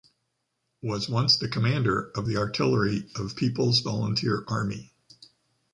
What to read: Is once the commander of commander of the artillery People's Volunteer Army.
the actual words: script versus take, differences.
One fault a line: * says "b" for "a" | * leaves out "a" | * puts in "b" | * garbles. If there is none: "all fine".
* says "Was" for "Is"
* leaves out "commander of"
* puts in "of"